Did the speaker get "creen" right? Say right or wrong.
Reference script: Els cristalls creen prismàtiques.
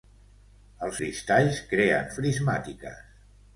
right